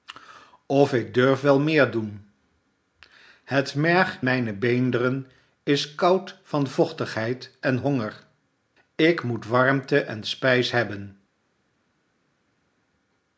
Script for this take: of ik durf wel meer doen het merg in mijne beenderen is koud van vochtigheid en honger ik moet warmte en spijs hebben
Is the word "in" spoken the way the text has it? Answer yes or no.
no